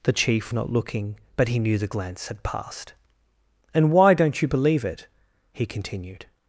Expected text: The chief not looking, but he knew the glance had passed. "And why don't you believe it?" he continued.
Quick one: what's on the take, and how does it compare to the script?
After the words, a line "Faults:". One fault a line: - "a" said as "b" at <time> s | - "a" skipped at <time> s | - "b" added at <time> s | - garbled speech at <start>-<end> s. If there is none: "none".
The chief not looking, but he knew the glance had passed. "And why don't you believe it?" he continued.
Faults:
none